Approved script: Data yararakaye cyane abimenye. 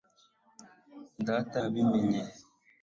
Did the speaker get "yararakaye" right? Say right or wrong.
wrong